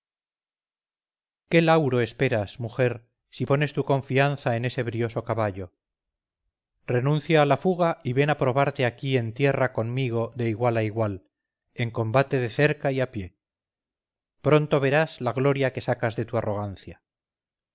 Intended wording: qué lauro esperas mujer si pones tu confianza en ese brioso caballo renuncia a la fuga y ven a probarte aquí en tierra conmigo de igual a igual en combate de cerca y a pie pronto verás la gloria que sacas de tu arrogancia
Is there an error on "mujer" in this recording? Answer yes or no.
no